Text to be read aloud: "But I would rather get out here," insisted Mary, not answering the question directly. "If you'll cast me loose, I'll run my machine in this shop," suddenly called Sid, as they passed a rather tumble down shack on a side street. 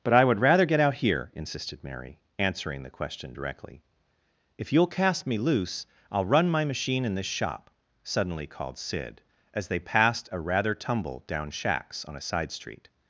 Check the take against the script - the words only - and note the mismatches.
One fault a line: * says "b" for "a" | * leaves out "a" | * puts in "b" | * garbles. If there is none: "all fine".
* leaves out "not"
* says "shacks" for "shack"